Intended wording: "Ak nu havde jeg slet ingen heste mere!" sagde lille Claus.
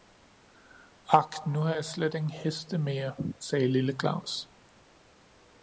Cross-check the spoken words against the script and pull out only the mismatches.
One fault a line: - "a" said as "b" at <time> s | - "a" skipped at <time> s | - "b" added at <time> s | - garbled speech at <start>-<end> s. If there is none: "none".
- "havde" said as "har" at 1.6 s